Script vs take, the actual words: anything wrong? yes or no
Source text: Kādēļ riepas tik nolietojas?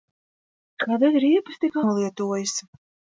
no